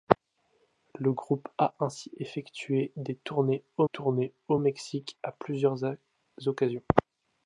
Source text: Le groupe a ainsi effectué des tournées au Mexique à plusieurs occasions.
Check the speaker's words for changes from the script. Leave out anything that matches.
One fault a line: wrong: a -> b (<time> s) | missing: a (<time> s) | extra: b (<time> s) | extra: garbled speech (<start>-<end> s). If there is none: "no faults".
extra: tournées au (3.8 s)